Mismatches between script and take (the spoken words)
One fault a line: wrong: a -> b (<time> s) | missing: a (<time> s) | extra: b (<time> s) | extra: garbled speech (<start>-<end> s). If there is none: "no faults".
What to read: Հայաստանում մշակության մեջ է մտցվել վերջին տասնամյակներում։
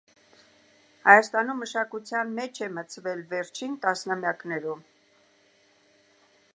no faults